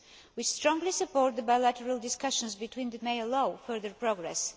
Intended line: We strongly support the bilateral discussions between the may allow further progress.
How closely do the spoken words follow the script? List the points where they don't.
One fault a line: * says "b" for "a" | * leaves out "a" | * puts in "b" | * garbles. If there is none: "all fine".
all fine